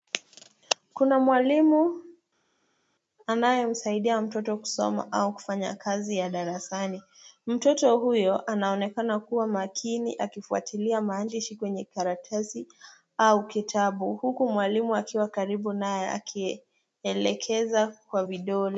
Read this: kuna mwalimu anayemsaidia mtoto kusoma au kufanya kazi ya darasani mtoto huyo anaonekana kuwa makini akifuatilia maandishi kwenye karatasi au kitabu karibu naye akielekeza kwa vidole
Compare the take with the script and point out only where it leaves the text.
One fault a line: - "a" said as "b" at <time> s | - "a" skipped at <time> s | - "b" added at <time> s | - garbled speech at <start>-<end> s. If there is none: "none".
- "huku mwalimu akiwa" added at 14.1 s